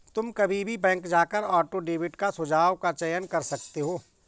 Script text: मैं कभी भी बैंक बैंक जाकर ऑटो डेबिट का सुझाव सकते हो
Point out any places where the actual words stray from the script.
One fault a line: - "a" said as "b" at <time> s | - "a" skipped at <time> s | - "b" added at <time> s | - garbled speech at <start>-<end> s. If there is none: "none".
- "मैं" said as "तुम" at 0.1 s
- "बैंक" skipped at 1.1 s
- "का चयन कर" added at 2.8 s